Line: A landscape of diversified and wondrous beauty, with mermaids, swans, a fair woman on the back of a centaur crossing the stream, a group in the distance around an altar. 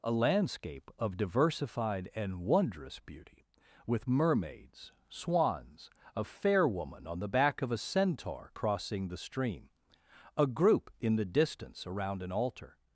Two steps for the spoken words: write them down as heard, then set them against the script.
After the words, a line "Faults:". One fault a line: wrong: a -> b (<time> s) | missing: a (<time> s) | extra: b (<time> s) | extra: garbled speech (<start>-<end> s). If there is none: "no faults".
A landscape of diversified and wondrous beauty, with mermaids, swans, a fair woman on the back of a centaur crossing the stream, a group in the distance around an altar.
Faults:
no faults